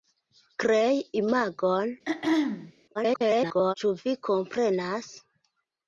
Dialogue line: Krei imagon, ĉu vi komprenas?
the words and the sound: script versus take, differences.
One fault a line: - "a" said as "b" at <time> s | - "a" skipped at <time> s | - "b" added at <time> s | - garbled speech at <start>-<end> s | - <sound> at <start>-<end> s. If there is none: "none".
- throat clearing at 2.1-2.7 s
- garbled speech at 2.9-3.7 s